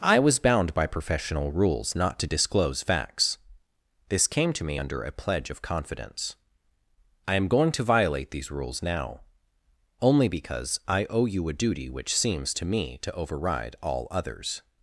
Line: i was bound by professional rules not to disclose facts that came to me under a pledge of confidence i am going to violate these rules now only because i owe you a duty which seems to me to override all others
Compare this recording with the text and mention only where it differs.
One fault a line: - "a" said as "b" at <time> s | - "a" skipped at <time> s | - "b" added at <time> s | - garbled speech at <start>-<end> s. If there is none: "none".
- "that" said as "this" at 4.1 s